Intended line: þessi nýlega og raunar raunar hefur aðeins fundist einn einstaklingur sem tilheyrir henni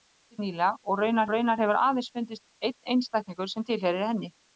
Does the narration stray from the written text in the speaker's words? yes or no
no